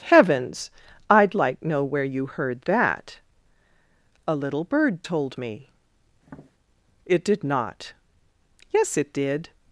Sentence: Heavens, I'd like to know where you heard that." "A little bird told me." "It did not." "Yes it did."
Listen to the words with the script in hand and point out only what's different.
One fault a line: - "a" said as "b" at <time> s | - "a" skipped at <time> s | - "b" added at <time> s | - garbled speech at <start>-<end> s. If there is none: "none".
- "to" skipped at 1.6 s